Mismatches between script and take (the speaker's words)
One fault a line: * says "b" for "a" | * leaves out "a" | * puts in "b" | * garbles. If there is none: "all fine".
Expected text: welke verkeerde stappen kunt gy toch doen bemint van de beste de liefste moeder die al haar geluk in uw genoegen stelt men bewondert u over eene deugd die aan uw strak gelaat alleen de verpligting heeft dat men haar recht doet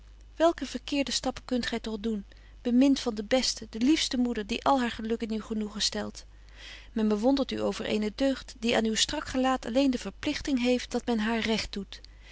all fine